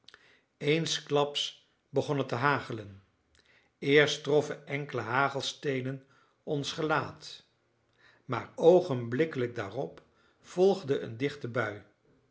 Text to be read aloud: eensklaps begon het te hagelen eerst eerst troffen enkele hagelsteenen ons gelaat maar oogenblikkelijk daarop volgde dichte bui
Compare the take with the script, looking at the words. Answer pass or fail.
fail